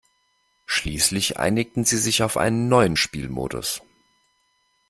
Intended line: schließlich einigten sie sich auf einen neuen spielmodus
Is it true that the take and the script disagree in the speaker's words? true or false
false